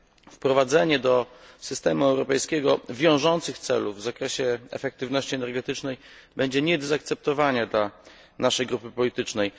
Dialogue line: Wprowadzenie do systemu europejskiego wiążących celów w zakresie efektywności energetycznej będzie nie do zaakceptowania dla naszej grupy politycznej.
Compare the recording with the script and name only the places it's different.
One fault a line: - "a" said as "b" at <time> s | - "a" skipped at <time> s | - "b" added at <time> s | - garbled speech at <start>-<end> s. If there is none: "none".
none